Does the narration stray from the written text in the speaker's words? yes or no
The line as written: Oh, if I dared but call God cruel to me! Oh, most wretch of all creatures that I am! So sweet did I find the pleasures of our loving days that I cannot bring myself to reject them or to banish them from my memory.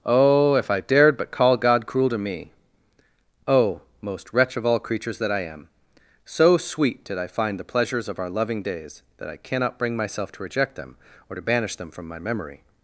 no